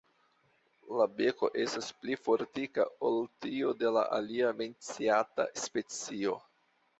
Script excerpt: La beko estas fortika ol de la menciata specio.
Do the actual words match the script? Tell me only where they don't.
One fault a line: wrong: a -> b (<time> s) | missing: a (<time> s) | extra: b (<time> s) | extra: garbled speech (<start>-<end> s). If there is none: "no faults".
extra: pli (2.0 s)
extra: tiu (3.5 s)
extra: alia (4.2 s)